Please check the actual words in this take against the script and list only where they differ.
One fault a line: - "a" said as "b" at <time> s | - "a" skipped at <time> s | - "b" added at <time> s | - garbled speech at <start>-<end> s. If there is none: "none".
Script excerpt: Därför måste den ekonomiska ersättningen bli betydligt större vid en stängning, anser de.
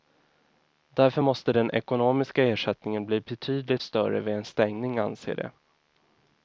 none